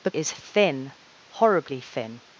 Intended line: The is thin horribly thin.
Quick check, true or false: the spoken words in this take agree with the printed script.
true